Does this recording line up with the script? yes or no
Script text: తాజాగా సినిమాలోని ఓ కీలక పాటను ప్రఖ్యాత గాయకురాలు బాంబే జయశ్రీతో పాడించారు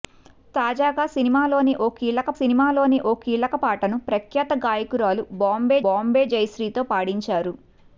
no